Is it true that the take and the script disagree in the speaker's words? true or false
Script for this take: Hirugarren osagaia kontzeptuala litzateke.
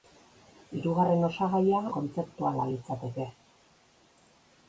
false